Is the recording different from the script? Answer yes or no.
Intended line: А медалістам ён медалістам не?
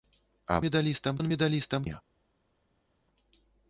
no